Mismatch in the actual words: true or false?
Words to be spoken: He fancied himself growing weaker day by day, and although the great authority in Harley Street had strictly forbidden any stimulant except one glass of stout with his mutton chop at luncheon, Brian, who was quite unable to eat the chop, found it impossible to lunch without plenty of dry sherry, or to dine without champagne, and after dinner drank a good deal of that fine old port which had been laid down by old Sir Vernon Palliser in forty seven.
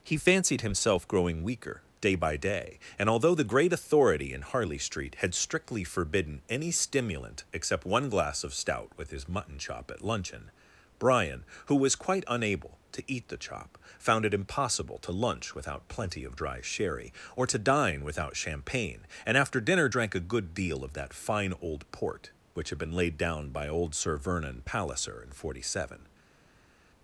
false